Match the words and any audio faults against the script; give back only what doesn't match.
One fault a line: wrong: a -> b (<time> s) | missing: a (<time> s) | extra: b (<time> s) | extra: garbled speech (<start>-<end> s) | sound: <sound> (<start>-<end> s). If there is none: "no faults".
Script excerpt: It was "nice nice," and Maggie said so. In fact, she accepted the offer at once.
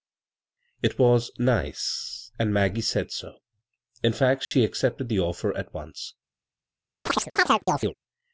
missing: nice (2.3 s)
sound: dropout (4.4-4.5 s)
sound: chirp (7.1-7.9 s)